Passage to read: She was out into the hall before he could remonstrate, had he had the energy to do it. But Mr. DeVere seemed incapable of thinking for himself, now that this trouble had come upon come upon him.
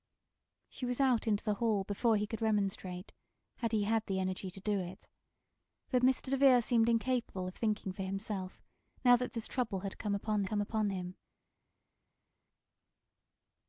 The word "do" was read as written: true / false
true